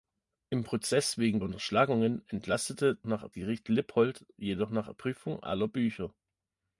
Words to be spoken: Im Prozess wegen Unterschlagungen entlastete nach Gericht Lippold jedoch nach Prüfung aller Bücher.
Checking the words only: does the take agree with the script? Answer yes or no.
yes